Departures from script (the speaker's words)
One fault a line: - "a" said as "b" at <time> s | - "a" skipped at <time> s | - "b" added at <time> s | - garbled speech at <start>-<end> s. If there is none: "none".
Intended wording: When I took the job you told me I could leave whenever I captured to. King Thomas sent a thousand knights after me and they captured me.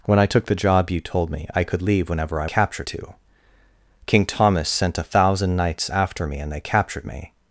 none